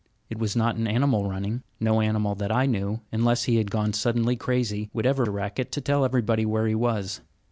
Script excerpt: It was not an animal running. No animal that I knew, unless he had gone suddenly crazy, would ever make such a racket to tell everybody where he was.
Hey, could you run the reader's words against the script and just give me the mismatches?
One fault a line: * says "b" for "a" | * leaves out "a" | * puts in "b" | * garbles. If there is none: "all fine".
* leaves out "make such"